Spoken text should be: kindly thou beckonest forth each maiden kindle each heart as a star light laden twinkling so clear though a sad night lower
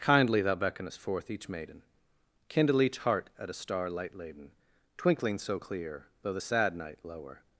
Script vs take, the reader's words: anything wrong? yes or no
yes